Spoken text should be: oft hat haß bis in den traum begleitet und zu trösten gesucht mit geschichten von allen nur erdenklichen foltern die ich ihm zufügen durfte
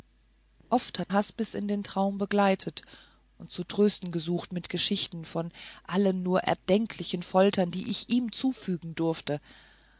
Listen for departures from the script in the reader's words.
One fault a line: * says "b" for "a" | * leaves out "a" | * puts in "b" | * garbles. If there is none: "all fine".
all fine